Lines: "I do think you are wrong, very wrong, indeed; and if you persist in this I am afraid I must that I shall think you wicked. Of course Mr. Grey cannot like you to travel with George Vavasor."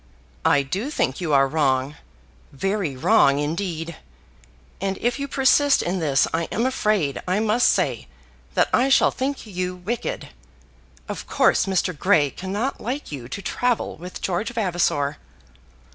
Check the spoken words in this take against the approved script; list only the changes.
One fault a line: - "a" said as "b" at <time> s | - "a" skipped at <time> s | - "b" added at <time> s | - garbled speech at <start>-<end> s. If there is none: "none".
- "say" added at 7.7 s